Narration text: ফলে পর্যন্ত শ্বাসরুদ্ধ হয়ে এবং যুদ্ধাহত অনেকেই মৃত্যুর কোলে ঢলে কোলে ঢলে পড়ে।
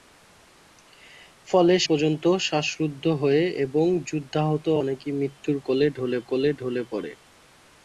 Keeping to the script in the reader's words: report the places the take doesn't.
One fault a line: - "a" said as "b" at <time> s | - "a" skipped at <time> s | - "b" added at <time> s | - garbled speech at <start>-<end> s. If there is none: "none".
none